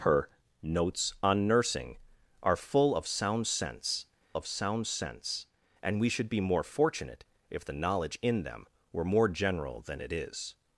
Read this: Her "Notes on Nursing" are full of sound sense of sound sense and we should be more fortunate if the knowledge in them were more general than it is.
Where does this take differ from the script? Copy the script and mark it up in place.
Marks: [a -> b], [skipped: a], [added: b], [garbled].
Her "Notes on Nursing" are full of sound sense of sound sense and we should be more fortunate if the knowledge in them were more general than it is.